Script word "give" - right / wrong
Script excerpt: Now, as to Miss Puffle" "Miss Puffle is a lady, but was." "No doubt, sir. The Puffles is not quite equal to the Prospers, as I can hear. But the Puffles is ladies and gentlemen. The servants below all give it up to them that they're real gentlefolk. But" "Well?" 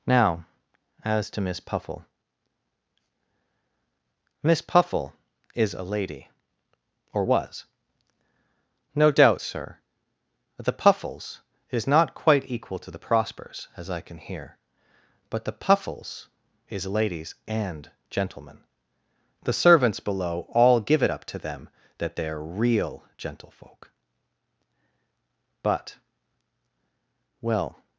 right